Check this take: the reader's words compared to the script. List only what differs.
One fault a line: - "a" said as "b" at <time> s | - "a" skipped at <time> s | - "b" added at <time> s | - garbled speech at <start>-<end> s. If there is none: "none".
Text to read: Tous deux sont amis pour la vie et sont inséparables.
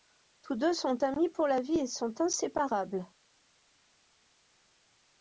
none